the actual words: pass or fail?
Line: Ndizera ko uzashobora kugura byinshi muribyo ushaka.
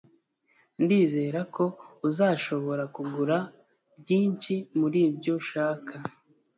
pass